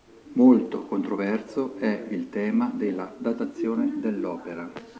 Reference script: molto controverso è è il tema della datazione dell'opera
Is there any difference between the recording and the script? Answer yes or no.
yes